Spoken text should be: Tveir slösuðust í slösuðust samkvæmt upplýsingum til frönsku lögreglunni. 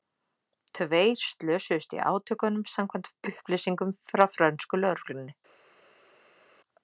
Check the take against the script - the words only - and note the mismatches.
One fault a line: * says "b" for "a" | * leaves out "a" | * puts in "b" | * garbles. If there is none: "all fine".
* says "átökunum" for "slösuðust"
* says "frá" for "til"